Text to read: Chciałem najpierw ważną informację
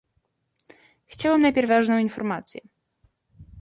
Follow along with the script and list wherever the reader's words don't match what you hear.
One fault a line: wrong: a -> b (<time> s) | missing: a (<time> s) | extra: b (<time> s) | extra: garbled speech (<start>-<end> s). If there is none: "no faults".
no faults